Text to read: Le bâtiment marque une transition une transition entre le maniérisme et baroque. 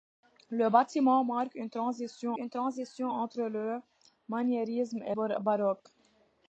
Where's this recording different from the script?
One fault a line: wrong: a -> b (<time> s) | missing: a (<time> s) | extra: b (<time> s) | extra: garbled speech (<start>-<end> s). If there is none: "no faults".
no faults